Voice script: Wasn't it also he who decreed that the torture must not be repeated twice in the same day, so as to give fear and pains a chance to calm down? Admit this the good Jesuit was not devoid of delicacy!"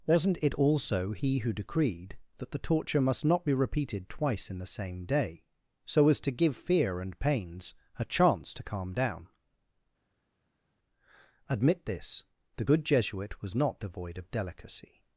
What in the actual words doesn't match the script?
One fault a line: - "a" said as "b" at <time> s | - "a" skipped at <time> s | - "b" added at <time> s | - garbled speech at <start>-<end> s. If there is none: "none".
none